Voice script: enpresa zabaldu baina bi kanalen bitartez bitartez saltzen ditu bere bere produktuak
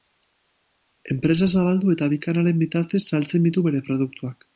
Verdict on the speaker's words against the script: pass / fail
fail